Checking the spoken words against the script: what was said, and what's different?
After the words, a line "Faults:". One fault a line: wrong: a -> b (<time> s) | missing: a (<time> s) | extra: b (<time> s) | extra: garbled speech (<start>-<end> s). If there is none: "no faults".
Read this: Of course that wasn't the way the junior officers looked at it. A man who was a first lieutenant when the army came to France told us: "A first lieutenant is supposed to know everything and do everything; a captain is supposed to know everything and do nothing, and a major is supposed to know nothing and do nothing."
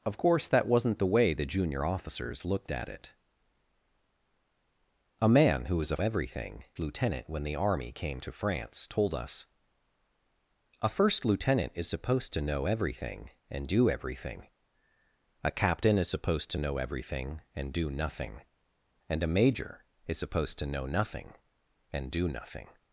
Of course that wasn't the way the junior officers looked at it. A man who was a everything lieutenant when the army came to France told us: "A first lieutenant is supposed to know everything and do everything; a captain is supposed to know everything and do nothing, and a major is supposed to know nothing and do nothing."
Faults:
wrong: first -> everything (6.0 s)